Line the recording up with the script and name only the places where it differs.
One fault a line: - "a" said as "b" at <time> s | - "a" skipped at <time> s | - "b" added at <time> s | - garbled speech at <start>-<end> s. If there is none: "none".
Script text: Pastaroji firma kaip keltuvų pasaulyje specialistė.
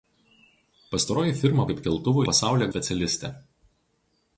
none